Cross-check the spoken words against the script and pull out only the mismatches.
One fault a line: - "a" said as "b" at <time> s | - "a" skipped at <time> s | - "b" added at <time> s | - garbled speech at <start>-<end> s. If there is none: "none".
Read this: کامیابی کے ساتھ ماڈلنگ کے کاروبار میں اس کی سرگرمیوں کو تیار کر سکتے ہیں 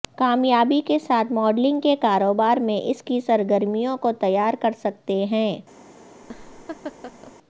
none